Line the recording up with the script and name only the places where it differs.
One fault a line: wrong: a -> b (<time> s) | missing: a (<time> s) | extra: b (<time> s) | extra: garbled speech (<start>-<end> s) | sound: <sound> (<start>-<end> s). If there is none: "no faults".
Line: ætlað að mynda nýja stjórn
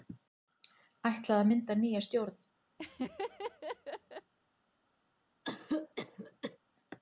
sound: laugh (2.8-4.3 s)
sound: cough (5.4-6.6 s)